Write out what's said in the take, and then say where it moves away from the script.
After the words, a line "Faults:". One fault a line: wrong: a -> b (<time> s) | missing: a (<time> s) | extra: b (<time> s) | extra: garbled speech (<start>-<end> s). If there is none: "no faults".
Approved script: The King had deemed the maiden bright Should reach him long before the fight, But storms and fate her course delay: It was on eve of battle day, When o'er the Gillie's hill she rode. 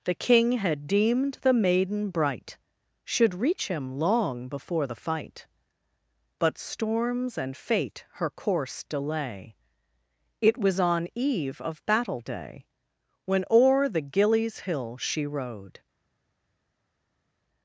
The King had deemed the maiden bright Should reach him long before the fight, But storms and fate her course delay: It was on eve of battle day, When o'er the Gillie's hill she rode.
Faults:
no faults